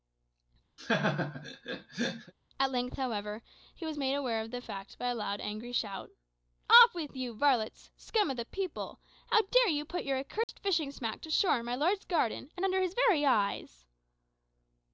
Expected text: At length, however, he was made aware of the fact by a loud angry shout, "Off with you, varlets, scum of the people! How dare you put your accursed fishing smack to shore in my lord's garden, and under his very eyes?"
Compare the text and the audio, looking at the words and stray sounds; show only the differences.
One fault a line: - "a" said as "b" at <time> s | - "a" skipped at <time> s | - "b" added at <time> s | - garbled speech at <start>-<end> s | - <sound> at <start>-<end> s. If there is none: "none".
- laugh at 0.8-2.3 s
- dropout at 10.4-10.5 s